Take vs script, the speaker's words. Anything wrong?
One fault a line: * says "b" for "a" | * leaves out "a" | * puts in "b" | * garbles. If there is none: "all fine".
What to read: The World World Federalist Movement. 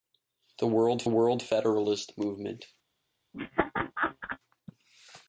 all fine